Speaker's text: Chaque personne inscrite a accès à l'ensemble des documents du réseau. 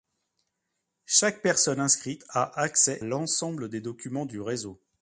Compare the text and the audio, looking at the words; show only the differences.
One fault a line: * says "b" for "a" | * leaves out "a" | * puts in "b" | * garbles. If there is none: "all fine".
* leaves out "à"